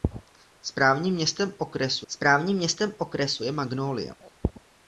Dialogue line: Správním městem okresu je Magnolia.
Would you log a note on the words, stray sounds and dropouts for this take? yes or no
yes